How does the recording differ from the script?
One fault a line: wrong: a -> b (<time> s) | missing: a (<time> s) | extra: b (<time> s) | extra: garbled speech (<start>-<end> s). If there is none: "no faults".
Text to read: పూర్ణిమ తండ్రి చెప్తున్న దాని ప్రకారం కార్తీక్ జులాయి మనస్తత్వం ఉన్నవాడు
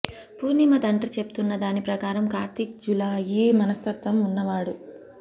no faults